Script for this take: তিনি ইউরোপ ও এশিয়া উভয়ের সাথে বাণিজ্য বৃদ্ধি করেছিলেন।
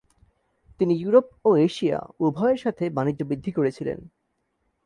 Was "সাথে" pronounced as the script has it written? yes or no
yes